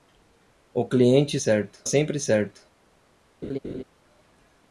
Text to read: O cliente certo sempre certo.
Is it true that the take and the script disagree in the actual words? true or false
false